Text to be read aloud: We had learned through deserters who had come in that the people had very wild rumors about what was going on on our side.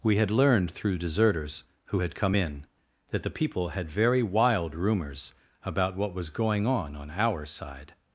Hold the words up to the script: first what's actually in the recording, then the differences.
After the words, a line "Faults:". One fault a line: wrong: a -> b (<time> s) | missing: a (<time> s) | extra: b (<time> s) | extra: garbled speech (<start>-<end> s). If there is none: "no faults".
We had learned through deserters who had come in that the people had very wild rumors about what was going on on our side.
Faults:
no faults